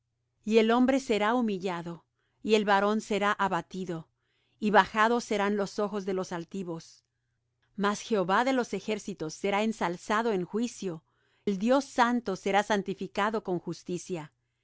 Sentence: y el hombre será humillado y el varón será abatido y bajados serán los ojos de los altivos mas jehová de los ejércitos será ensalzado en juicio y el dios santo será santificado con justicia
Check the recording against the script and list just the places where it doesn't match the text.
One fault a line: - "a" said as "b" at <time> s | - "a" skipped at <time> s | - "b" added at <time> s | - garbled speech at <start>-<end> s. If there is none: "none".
- "y" skipped at 11.0 s